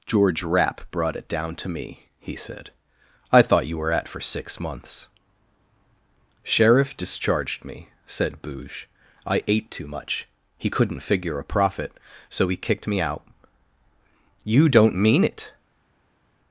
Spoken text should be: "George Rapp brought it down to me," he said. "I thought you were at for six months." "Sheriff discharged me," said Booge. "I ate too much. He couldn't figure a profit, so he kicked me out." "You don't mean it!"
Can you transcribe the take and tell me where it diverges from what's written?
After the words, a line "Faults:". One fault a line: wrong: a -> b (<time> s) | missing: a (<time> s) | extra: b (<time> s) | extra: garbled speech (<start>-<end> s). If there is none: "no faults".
"George Rapp brought it down to me," he said. "I thought you were at for six months." "Sheriff discharged me," said Booge. "I ate too much. He couldn't figure a profit, so he kicked me out." "You don't mean it!"
Faults:
no faults